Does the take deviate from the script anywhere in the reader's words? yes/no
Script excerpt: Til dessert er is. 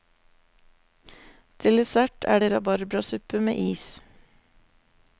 yes